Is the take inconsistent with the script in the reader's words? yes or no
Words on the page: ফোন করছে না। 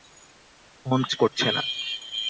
no